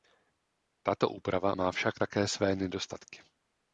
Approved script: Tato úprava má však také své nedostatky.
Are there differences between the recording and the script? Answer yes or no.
no